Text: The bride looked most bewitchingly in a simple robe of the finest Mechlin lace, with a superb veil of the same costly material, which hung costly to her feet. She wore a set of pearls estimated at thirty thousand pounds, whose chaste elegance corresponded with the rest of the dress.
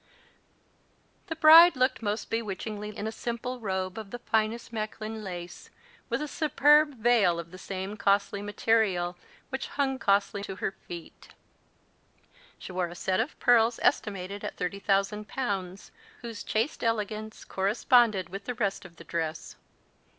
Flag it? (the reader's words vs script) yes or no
no